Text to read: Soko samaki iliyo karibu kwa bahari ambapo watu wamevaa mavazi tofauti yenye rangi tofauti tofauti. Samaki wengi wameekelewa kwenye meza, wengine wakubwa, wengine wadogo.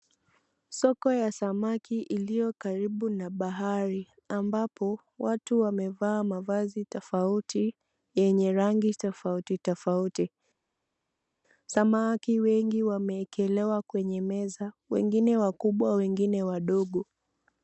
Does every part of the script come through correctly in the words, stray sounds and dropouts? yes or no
no